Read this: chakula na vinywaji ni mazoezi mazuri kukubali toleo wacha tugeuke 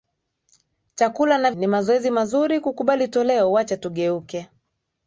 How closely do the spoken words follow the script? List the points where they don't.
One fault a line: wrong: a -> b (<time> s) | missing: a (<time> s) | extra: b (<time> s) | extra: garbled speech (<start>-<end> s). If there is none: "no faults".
missing: vinywaji (1.5 s)